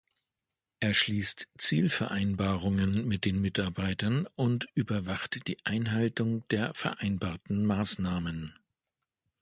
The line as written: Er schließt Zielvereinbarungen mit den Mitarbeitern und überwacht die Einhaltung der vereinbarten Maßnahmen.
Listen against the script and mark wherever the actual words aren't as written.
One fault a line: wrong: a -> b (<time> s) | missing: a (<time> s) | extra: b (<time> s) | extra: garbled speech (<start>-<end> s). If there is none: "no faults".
no faults